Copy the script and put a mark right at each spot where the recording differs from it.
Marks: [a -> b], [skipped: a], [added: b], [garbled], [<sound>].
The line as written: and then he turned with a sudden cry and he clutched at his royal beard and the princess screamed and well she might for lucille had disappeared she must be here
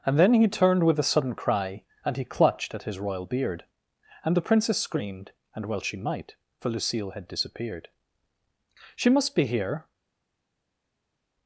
and then he turned with a sudden cry and he clutched at his royal beard and the princess screamed and well she might for lucille had disappeared she must be here